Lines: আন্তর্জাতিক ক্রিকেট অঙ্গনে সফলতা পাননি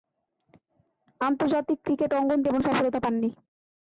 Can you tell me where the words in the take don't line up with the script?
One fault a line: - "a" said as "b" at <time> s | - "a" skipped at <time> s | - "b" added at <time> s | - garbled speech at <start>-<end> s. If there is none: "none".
- "তেমন" added at 2.5 s